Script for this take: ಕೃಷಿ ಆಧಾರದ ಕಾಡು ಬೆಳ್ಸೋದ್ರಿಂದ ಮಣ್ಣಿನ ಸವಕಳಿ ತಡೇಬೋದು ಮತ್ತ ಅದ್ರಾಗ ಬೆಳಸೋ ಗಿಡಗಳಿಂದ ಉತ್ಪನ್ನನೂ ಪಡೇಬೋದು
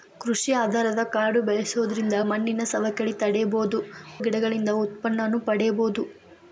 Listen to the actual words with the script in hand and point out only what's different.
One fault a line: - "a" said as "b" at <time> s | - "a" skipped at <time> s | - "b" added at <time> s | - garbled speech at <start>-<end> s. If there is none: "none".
- "ಮತ್ತ ಅದ್ರಾಗ ಬೆಳಸೋ" skipped at 3.8 s